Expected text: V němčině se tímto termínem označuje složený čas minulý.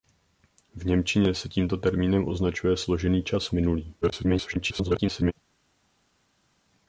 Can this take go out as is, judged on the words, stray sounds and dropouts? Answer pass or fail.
fail